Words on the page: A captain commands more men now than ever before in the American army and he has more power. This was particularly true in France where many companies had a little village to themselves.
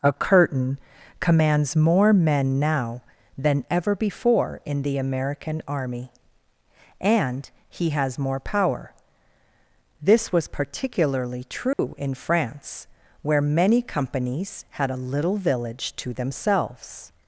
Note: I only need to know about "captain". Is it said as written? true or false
false